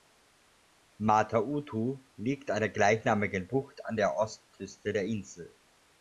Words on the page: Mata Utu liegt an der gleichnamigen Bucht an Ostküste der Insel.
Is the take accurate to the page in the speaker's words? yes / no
no